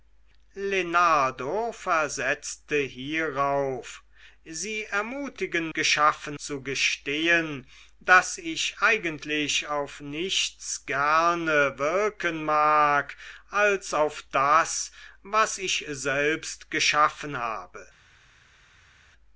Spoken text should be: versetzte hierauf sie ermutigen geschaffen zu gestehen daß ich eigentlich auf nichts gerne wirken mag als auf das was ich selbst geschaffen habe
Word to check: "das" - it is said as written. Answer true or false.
true